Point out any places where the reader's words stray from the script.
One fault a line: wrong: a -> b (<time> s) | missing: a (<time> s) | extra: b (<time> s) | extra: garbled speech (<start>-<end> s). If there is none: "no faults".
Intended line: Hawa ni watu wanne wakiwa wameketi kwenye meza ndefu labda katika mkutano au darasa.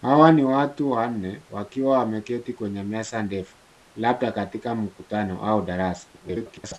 extra: garbled speech (6.1-6.8 s)